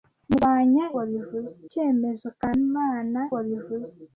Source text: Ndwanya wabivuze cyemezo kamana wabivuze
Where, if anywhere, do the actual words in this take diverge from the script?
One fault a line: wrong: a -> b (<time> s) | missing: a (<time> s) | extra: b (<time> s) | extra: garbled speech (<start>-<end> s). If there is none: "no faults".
no faults